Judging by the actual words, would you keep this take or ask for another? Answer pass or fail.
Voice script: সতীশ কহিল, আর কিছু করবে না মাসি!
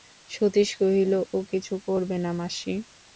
fail